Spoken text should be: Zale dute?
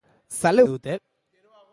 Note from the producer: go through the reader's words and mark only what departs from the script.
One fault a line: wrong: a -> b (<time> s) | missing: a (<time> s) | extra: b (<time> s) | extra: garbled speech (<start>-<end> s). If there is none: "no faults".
no faults